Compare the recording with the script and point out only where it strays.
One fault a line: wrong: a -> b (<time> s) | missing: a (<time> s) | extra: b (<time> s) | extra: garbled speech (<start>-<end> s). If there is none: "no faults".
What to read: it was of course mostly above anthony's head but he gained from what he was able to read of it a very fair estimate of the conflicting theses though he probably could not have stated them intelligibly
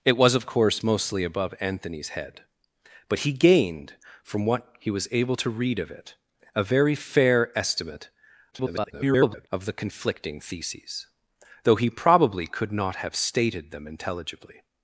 extra: garbled speech (8.5-9.5 s)